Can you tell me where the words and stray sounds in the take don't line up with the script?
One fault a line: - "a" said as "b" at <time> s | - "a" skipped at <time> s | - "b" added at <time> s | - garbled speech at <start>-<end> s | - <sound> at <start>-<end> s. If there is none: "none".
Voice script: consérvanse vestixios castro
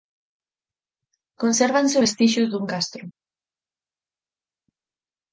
- "dun" added at 2.5 s